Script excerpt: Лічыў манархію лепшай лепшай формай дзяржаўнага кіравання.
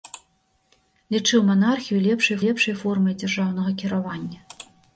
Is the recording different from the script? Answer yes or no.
no